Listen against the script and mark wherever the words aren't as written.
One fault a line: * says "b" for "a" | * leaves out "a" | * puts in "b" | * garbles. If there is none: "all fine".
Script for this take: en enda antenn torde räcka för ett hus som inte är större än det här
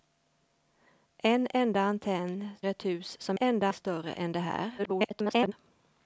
* leaves out "torde räcka för"
* says "enda" for "inte"
* garbles